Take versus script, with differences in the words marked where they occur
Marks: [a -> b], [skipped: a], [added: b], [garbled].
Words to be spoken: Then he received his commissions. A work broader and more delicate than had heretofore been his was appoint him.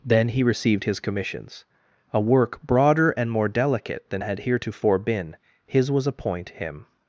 Then he received his commissions. A work broader and more delicate than had heretofore been his was appoint him.